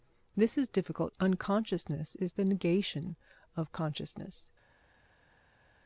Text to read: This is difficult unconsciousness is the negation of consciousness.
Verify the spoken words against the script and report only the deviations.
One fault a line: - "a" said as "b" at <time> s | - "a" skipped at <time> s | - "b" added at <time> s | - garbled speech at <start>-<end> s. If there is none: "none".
none